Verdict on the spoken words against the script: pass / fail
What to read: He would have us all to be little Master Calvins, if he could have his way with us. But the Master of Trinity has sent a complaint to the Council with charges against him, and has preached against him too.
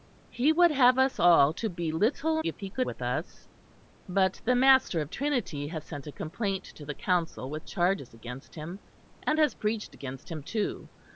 fail